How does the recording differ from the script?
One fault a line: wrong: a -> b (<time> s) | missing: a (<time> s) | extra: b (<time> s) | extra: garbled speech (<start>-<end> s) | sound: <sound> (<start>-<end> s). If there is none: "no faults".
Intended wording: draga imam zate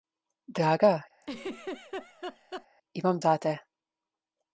sound: laugh (1.2-2.7 s)